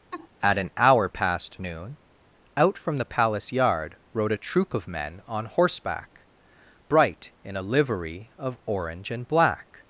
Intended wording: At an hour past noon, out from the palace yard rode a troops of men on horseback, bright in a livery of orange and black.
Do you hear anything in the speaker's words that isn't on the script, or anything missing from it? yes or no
yes